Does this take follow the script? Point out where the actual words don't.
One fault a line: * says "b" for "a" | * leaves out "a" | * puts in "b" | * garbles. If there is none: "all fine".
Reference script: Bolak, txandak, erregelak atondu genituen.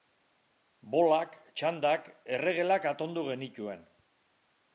all fine